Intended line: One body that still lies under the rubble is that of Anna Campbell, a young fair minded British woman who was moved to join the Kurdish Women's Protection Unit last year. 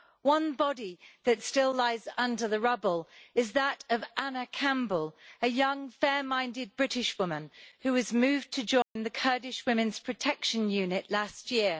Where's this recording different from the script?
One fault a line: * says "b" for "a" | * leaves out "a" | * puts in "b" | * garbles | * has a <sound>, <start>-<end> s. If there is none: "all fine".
* has a dropout, 8.8-9.0 s